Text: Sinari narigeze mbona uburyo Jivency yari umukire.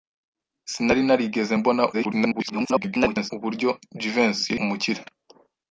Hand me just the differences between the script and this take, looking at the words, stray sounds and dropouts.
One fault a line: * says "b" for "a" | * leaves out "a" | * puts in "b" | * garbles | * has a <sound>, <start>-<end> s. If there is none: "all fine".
* garbles
* leaves out "yari"